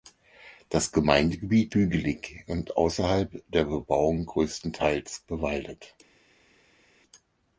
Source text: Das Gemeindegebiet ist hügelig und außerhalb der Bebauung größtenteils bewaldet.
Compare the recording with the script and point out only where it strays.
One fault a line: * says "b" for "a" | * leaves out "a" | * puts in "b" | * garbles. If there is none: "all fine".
* leaves out "ist"